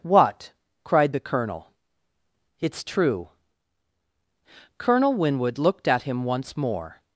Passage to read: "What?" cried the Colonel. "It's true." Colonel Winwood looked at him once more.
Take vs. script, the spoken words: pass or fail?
pass